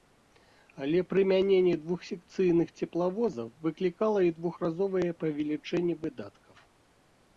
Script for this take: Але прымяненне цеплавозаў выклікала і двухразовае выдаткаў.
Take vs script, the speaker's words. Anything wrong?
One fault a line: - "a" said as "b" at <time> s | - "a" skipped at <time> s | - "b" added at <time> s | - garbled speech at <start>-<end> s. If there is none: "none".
- "двухсекцыйных" added at 1.8 s
- "павелічэнне" added at 5.2 s